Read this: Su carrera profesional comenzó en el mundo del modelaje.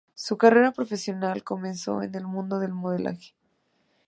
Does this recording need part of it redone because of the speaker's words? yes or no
no